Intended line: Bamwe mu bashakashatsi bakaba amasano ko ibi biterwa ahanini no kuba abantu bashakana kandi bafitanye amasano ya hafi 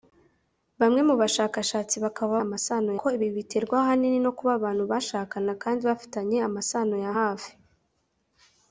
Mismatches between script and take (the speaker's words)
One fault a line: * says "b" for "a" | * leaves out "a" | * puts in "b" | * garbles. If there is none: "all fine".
all fine